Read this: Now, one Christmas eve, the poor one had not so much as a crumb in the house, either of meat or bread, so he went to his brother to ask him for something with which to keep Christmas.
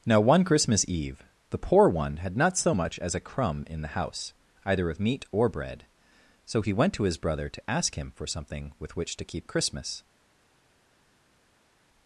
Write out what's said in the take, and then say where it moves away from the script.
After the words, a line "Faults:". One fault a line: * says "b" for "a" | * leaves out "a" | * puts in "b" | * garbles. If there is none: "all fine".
Now, one Christmas eve, the poor one had not so much as a crumb in the house, either of meat or bread, so he went to his brother to ask him for something with which to keep Christmas.
Faults:
all fine